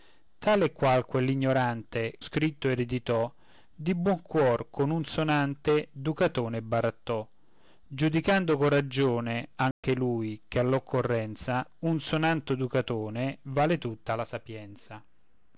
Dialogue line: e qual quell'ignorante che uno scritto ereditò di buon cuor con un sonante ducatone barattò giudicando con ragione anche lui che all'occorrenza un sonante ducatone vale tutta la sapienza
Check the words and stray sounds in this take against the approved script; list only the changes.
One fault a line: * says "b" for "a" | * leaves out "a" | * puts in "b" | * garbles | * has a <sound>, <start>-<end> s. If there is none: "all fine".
* leaves out "che uno"
* has a dropout, 9.7-9.8 s